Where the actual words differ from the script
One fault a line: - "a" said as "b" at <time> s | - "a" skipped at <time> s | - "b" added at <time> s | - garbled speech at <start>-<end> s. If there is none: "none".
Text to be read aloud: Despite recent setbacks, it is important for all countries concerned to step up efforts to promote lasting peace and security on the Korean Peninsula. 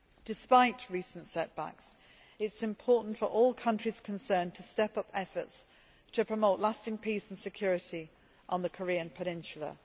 none